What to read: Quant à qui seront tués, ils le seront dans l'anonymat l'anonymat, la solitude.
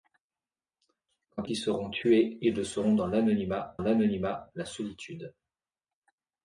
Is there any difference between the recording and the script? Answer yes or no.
no